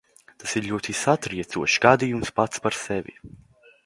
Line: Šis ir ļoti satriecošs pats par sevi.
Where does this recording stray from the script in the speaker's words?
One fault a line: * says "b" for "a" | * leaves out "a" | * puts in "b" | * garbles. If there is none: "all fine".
* says "Tas" for "Šis"
* puts in "gadījums"